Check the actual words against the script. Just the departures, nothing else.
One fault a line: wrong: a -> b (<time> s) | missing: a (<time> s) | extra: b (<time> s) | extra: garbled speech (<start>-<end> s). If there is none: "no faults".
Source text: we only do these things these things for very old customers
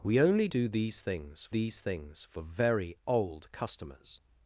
no faults